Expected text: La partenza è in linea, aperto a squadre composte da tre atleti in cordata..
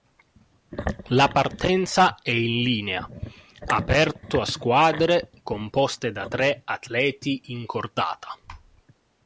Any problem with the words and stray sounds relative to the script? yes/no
no